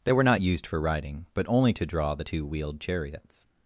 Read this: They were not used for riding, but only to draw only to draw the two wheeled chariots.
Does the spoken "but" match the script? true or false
true